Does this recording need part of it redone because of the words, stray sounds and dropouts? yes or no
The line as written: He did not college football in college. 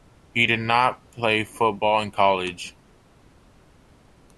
yes